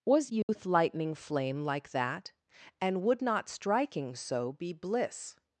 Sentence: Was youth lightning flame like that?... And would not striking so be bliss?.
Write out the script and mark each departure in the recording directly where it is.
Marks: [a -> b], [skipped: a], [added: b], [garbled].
Was youth lightning flame like that?... And would not striking so be bliss?.